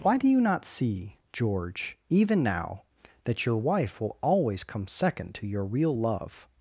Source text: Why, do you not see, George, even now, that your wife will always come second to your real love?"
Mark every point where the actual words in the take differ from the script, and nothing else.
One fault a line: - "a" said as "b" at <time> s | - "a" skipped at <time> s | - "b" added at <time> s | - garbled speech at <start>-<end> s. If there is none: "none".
none